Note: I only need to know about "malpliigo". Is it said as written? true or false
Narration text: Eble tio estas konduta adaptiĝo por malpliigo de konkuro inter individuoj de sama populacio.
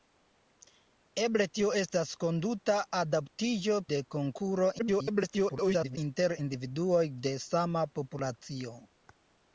false